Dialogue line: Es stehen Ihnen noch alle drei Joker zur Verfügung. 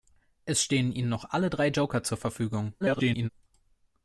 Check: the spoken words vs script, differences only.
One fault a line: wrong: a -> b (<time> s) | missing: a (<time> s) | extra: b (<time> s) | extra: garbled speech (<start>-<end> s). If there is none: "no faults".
extra: garbled speech (2.8-3.3 s)